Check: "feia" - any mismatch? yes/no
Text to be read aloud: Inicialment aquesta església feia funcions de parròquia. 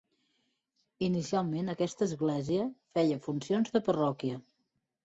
no